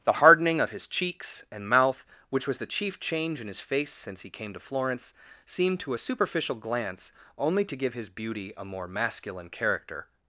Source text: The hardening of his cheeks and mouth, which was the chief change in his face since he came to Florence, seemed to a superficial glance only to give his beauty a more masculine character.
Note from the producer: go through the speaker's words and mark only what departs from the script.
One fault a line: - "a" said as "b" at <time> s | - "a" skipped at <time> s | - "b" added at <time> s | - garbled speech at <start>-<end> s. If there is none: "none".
none